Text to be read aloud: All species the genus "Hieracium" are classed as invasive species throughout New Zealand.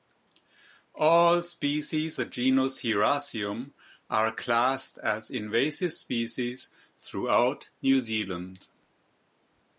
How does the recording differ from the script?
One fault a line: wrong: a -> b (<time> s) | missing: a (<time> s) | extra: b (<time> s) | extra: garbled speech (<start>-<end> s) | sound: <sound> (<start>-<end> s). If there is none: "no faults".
no faults